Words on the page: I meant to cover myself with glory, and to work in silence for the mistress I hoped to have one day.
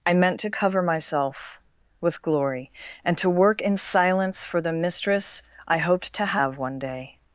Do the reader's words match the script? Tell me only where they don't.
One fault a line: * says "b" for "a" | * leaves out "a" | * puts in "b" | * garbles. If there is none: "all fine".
all fine